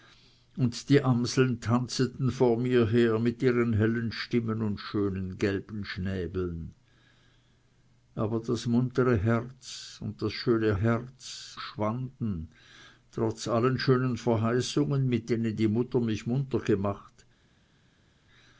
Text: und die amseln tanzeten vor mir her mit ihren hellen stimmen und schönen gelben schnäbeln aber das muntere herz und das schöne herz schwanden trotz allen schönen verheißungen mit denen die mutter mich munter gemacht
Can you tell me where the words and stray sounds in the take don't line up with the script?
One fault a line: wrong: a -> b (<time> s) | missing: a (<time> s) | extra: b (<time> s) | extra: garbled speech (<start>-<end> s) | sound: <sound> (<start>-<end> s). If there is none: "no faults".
no faults